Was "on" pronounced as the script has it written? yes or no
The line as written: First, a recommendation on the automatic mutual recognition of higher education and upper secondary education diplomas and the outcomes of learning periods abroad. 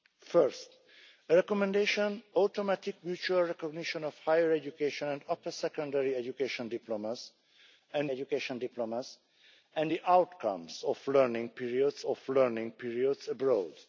no